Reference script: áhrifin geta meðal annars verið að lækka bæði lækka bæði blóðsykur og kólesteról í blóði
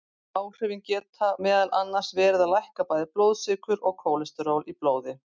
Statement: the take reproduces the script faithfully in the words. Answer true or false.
false